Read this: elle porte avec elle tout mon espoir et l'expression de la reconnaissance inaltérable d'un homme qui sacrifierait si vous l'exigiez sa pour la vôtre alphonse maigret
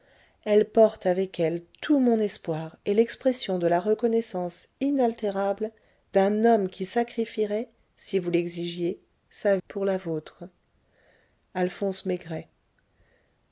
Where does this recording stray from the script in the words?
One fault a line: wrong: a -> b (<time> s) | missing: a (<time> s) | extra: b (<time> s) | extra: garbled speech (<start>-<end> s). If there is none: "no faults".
no faults